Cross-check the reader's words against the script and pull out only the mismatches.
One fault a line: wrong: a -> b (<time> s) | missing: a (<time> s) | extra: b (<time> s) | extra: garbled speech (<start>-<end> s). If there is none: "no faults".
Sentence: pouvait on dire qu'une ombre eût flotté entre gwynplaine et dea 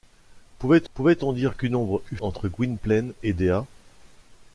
extra: pouvait (0.9 s)
missing: flotté (2.2 s)